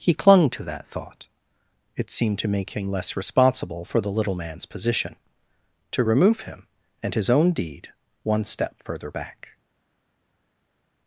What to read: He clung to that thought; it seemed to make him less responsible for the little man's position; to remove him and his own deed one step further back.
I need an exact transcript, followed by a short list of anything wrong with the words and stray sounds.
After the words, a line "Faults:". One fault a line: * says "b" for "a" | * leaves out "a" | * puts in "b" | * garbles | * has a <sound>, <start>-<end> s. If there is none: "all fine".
He clung to that thought; it seemed to make him less responsible for the little man's position; to remove him and his own deed one step further back.
Faults:
all fine